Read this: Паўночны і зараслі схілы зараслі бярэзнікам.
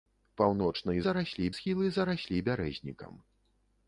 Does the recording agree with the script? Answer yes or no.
yes